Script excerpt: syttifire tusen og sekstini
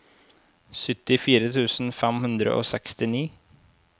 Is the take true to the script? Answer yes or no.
no